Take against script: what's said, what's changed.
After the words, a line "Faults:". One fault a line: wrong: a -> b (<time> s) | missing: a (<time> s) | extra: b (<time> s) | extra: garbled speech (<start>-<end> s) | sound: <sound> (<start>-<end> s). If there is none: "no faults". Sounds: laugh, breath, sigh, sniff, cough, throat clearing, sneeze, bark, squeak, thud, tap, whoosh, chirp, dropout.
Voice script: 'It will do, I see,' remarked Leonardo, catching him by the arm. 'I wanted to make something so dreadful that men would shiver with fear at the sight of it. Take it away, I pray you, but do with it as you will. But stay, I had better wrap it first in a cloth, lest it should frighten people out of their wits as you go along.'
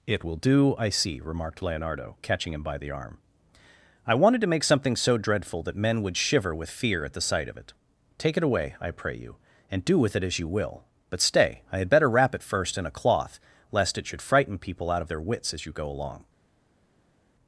'It will do, I see,' remarked Leonardo, catching him by the arm. 'I wanted to make something so dreadful that men would shiver with fear at the sight of it. Take it away, I pray you, and do with it as you will. But stay, I had better wrap it first in a cloth, lest it should frighten people out of their wits as you go along.'
Faults:
wrong: but -> and (9.7 s)